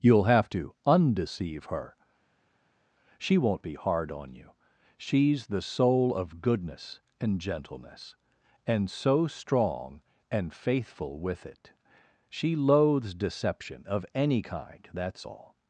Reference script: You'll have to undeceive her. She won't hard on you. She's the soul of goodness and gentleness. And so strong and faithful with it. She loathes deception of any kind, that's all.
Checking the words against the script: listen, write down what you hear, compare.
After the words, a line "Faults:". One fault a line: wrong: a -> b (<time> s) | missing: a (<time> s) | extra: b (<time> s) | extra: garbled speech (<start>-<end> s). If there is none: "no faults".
You'll have to undeceive her. She won't be hard on you. She's the soul of goodness and gentleness. And so strong and faithful with it. She loathes deception of any kind, that's all.
Faults:
extra: be (3.6 s)